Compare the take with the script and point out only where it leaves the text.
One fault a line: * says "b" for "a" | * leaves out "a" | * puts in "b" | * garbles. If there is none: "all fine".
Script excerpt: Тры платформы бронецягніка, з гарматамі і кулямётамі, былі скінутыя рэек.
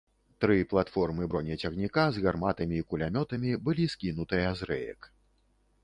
* puts in "з"